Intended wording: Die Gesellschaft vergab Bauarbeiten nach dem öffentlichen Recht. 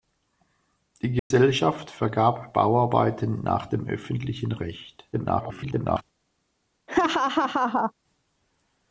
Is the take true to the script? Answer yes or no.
no